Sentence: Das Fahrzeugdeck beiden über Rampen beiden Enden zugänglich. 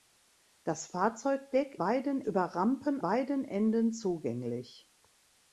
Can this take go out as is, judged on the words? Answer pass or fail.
pass